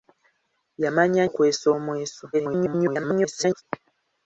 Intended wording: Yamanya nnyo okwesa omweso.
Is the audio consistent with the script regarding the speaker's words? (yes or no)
no